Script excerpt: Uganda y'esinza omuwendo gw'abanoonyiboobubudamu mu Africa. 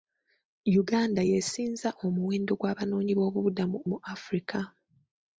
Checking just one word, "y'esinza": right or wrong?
right